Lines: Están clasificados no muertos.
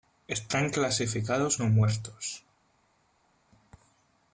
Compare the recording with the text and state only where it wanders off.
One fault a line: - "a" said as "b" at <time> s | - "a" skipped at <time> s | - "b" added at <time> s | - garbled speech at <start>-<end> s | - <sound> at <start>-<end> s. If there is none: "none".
none